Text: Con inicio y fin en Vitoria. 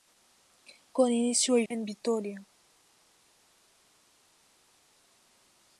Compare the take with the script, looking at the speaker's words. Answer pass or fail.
fail